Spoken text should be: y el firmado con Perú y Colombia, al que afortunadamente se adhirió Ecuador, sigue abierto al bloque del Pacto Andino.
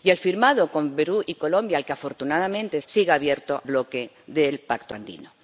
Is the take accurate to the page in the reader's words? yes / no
no